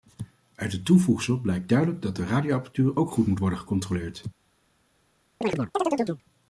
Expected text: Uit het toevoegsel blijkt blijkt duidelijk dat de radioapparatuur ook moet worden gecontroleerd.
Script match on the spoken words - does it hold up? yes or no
no